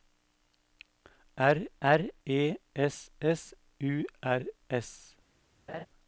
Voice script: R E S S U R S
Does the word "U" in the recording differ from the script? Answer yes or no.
no